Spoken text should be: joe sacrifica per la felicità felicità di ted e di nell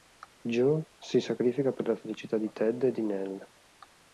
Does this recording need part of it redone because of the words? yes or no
yes